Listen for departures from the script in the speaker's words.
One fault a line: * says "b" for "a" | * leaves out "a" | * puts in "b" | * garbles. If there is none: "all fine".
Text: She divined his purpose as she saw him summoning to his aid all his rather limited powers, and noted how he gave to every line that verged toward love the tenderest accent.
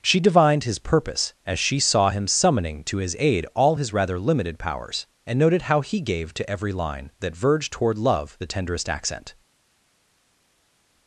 all fine